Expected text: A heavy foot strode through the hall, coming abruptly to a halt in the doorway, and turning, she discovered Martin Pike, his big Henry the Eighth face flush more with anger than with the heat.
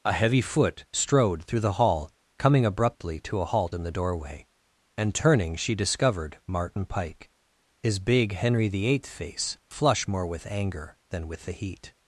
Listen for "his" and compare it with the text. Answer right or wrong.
right